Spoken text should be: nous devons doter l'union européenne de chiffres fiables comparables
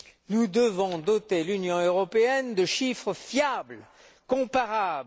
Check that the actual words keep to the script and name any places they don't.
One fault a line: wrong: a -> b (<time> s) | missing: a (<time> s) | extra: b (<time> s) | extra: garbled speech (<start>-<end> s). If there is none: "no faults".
no faults